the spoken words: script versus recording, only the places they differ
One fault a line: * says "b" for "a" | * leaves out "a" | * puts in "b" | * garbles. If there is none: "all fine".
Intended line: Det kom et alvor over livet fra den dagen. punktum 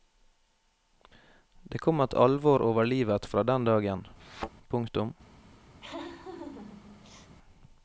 all fine